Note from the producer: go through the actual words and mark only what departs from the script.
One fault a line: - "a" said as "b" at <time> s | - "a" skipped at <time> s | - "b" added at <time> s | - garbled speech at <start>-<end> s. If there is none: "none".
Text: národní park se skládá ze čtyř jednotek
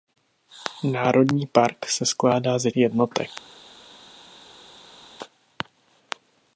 - "čtyř" skipped at 2.7 s